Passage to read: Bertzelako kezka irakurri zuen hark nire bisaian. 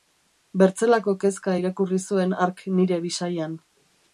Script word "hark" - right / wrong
right